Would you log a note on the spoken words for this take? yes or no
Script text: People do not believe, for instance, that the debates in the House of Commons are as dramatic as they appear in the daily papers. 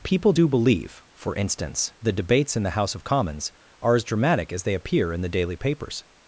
yes